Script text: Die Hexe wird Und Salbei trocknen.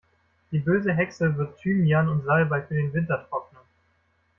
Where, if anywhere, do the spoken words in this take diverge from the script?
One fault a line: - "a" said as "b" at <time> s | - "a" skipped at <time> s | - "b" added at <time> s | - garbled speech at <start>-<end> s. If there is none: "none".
- "böse" added at 0.6 s
- "Thymian" added at 1.6 s
- "für den Winter" added at 2.6 s